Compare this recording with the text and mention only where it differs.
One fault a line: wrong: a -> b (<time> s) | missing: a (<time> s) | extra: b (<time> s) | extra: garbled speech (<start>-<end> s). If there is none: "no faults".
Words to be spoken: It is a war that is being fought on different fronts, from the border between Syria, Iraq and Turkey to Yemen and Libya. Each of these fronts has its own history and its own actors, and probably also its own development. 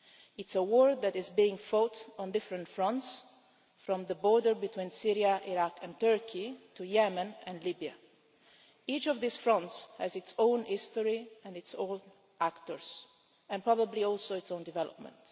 no faults